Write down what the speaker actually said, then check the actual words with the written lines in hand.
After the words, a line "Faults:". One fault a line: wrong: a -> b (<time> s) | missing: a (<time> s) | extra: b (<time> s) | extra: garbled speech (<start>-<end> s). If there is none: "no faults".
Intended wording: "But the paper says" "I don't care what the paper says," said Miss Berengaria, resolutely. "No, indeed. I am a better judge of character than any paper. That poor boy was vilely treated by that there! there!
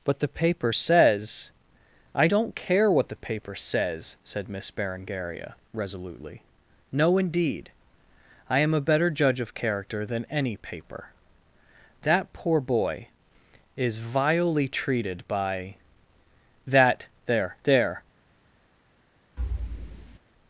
"But the paper says" "I don't care what the paper says," said Miss Berengaria, resolutely. "No, indeed. I am a better judge of character than any paper. That poor boy is vilely treated by that there! there!
Faults:
wrong: was -> is (13.8 s)